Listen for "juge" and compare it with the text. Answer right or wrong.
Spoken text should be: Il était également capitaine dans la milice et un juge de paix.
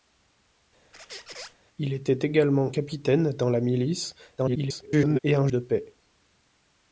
wrong